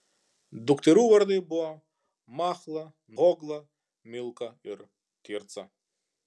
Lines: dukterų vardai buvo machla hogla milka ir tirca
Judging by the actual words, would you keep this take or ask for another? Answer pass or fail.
pass